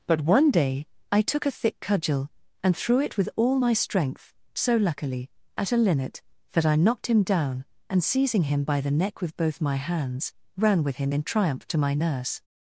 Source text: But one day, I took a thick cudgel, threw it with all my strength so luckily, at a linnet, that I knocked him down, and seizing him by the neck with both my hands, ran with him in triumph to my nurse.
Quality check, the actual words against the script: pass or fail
fail